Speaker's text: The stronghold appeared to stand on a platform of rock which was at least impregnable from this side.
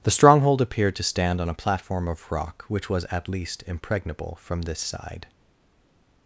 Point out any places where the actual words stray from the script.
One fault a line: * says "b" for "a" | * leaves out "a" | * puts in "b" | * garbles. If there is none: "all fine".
all fine